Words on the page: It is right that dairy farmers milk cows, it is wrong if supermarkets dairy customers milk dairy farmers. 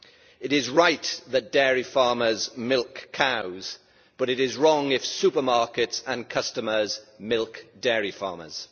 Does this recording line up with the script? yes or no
no